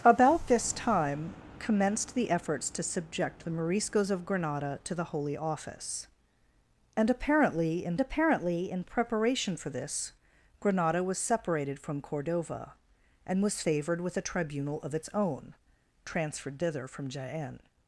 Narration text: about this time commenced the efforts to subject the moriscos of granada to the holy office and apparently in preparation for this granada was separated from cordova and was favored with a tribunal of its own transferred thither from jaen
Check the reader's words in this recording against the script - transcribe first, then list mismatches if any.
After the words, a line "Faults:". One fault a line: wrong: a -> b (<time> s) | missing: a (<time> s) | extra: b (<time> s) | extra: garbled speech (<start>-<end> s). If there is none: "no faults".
about this time commenced the efforts to subject the moriscos of granada to the holy office and apparently in apparently in preparation for this granada was separated from cordova and was favored with a tribunal of its own transferred thither from jaen
Faults:
extra: apparently in (8.0 s)